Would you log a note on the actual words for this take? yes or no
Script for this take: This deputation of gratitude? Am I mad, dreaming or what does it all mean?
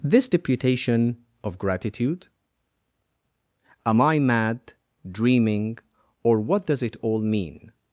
no